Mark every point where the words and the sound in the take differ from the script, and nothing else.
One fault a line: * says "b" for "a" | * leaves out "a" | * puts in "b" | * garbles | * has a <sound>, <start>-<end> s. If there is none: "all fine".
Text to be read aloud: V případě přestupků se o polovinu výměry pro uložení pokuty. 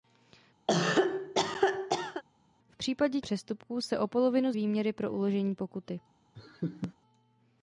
* has a cough, 0.7-2.2 s
* has a laugh, 6.3-6.9 s